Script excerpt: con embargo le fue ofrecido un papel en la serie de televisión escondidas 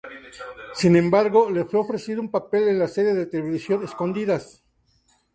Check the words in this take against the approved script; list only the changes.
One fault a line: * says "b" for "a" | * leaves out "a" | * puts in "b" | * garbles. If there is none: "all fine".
* says "sin" for "con"